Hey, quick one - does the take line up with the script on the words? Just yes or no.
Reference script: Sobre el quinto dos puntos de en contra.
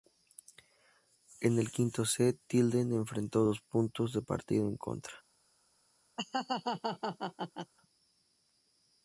no